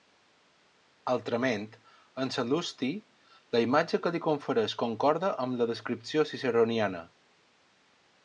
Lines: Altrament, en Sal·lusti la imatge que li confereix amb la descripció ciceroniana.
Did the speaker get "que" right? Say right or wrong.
right